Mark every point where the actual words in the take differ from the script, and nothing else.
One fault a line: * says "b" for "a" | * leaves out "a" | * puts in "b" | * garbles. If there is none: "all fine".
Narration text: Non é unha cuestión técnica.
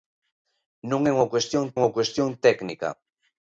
* puts in "unha cuestión"